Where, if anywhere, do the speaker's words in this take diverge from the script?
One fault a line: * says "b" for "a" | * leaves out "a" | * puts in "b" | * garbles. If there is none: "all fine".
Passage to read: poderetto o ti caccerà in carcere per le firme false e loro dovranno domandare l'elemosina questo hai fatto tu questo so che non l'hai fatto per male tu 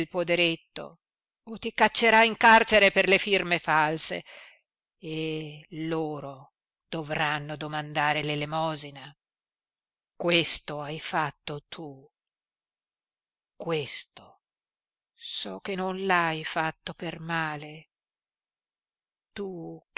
all fine